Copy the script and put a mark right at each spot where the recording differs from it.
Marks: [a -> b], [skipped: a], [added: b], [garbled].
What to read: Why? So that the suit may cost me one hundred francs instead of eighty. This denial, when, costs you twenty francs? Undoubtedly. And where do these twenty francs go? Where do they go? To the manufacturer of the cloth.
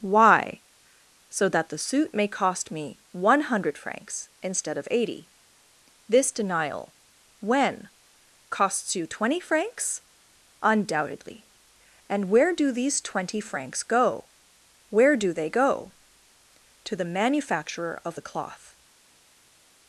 Why? So that the suit may cost me one hundred francs instead of eighty. This denial, when, costs you twenty francs? Undoubtedly. And where do these twenty francs go? Where do they go? To the manufacturer of the cloth.